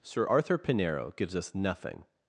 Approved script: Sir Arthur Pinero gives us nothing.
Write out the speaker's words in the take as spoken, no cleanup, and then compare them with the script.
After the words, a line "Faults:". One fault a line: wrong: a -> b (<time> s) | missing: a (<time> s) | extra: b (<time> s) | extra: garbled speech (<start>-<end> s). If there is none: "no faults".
Sir Arthur Pinero gives us nothing.
Faults:
no faults